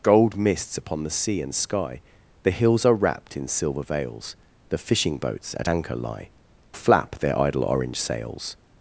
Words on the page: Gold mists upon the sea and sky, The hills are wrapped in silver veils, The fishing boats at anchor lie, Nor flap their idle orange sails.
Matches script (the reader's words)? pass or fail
fail